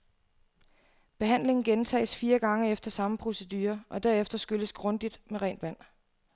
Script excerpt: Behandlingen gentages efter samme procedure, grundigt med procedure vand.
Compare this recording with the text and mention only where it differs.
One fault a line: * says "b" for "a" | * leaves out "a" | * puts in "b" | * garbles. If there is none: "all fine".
* puts in "fire gange"
* puts in "og derefter skylles"
* says "rent" for "procedure"